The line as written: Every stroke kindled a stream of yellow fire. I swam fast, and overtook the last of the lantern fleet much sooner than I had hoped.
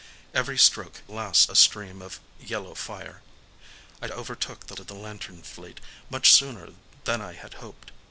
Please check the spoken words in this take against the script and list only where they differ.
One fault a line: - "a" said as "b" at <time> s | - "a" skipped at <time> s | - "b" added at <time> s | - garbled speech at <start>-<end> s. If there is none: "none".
- "kindled" said as "last" at 1.1 s
- "swam fast and" skipped at 4.1 s
- "last" skipped at 4.8 s